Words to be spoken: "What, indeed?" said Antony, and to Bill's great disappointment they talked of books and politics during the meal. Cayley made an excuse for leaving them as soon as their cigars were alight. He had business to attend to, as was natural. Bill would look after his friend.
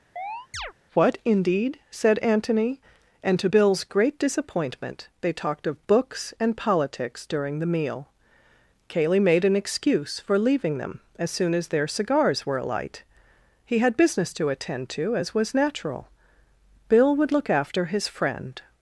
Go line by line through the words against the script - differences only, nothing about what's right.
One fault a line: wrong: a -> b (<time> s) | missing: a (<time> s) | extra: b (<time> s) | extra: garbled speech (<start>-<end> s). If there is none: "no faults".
no faults